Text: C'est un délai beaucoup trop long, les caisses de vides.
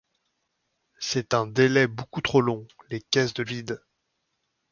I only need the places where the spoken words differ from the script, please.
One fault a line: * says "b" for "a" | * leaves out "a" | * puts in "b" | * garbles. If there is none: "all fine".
all fine